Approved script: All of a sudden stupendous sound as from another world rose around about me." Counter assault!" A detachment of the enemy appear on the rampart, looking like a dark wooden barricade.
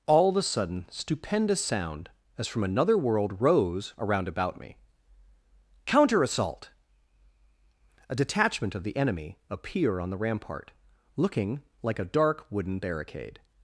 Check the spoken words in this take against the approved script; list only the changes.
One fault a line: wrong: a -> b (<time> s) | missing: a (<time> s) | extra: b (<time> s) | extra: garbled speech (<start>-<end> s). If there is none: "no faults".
no faults